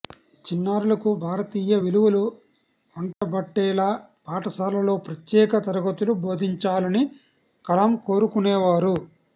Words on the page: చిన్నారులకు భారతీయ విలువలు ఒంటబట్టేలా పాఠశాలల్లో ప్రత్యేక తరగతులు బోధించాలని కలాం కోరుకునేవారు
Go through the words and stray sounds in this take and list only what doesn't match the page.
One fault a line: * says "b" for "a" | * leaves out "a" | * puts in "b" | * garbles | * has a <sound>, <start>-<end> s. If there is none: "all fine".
* has a dropout, 3.1-3.2 s